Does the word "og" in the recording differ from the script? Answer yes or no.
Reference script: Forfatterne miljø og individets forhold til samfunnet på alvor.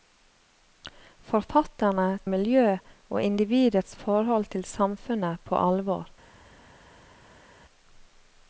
no